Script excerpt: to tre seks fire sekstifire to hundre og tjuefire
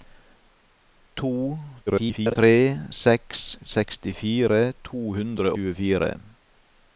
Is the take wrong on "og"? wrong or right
wrong